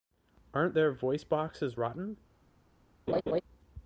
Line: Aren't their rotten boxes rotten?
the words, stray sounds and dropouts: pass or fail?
fail